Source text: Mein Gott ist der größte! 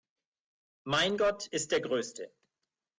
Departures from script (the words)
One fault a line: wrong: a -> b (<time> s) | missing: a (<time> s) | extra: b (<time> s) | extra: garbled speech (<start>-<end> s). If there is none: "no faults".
no faults